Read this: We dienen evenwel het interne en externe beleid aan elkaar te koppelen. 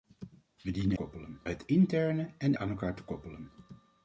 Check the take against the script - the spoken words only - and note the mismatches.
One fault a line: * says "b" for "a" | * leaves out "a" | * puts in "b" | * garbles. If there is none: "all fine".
* says "koppelen" for "evenwel"
* leaves out "externe beleid"